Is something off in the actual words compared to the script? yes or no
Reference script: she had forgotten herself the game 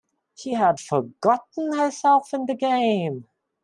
yes